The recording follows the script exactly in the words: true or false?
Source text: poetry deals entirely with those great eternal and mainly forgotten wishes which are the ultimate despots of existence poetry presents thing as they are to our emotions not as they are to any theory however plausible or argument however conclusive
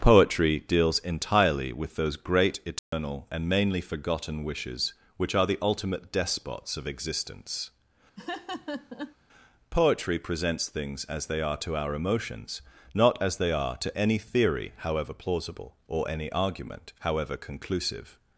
false